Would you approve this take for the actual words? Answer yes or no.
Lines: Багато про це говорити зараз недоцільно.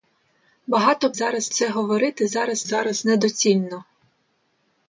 no